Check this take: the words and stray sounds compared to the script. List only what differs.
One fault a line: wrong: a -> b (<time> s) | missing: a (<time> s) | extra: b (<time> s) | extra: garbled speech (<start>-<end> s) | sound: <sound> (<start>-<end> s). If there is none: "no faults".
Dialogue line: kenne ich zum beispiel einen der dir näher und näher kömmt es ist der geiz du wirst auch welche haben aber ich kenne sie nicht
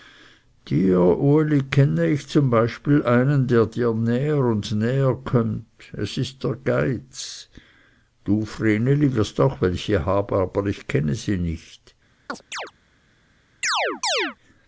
extra: vreneli (8.4 s)
sound: chirp (12.3-12.7 s)
sound: chirp (13.6-14.4 s)